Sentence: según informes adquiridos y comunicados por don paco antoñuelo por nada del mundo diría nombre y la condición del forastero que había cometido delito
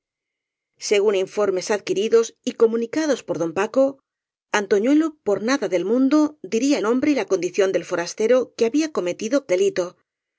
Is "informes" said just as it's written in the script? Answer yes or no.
yes